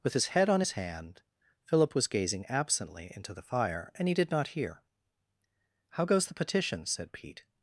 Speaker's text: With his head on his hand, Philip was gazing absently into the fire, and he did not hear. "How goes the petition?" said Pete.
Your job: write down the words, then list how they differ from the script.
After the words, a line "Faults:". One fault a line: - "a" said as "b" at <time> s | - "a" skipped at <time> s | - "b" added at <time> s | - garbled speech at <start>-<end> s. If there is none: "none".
With his head on his hand, Philip was gazing absently into the fire, and he did not hear. "How goes the petition?" said Pete.
Faults:
none